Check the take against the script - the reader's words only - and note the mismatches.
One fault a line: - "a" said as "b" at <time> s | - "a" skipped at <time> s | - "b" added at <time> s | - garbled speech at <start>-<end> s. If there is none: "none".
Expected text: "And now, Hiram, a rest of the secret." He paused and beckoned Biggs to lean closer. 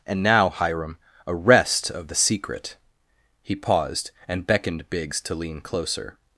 none